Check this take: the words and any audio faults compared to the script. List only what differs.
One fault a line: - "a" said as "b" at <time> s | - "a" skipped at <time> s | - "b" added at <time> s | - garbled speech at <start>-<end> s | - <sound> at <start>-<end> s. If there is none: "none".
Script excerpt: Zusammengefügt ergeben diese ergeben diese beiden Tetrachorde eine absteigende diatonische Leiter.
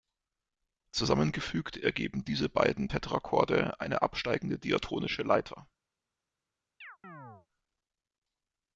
- "ergeben diese" skipped at 2.5 s
- chirp at 6.8-7.5 s